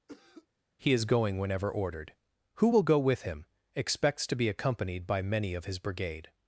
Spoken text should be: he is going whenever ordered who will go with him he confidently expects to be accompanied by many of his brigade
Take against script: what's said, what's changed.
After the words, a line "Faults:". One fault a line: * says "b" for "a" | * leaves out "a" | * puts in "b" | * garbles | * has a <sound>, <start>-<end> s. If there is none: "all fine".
he is going whenever ordered who will go with him expects to be accompanied by many of his brigade
Faults:
* has a cough, 0.1-0.5 s
* leaves out "he confidently"